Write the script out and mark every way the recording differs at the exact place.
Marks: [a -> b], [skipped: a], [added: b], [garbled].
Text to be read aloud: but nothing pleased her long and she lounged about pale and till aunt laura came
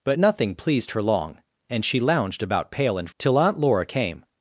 but nothing pleased her long and she lounged about pale and till aunt laura came